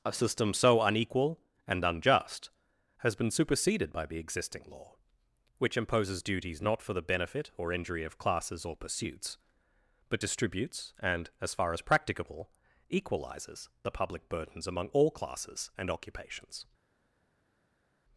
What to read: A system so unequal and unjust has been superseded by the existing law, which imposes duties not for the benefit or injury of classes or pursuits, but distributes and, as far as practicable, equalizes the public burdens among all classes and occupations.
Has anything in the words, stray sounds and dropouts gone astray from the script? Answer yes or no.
no